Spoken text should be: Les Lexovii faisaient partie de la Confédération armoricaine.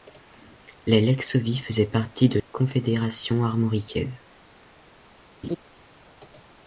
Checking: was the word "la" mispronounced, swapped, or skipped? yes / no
yes